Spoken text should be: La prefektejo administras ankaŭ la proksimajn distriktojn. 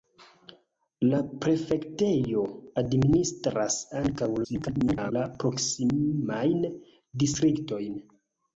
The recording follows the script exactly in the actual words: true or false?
false